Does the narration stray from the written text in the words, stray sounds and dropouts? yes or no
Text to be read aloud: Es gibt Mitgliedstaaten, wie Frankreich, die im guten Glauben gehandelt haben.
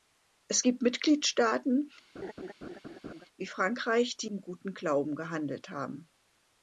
yes